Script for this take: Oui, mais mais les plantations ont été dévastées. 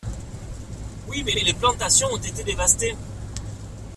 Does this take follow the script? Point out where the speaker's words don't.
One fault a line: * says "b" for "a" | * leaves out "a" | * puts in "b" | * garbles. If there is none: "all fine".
all fine